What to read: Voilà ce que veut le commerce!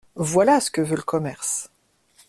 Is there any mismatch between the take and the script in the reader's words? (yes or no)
no